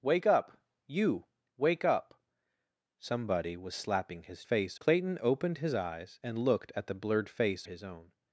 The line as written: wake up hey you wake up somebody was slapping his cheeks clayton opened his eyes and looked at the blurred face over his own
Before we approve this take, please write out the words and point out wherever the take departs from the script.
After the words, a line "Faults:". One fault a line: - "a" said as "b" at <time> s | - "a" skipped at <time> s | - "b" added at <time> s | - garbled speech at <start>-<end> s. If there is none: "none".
wake up you wake up somebody was slapping his face clayton opened his eyes and looked at the blurred face his own
Faults:
- "hey" skipped at 0.6 s
- "cheeks" said as "face" at 4.4 s
- "over" skipped at 7.7 s